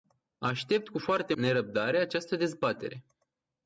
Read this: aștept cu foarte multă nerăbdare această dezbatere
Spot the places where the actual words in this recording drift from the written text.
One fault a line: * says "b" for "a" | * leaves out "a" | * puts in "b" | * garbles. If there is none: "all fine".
* leaves out "multă"